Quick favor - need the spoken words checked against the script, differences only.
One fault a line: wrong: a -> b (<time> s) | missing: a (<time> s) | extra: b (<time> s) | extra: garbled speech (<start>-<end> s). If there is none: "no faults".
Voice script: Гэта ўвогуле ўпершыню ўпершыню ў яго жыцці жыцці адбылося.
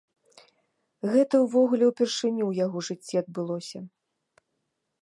missing: ўпершыню (2.4 s)
missing: жыцці (3.1 s)